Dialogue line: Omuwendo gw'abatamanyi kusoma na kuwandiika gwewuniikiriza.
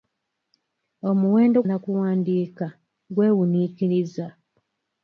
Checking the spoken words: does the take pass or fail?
fail